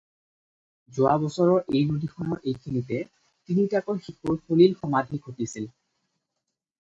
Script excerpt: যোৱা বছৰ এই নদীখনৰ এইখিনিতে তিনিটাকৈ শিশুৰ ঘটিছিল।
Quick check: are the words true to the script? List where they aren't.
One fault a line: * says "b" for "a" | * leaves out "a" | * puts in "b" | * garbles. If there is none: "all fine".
* puts in "সলিল সমাধি"